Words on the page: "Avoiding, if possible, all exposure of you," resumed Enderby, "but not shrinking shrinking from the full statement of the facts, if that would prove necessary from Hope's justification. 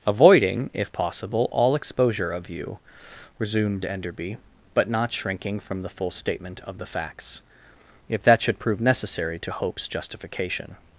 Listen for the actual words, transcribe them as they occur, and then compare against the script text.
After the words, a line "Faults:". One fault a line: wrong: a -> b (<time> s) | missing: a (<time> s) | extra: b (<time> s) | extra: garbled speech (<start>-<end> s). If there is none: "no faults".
"Avoiding, if possible, all exposure of you," resumed Enderby, "but not shrinking from the full statement of the facts, if that should prove necessary to Hope's justification.
Faults:
missing: shrinking (5.6 s)
wrong: would -> should (8.4 s)
wrong: from -> to (9.4 s)